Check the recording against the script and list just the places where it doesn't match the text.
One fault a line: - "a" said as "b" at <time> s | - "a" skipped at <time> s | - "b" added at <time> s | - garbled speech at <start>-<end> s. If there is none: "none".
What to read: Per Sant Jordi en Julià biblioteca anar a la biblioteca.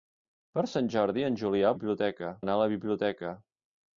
none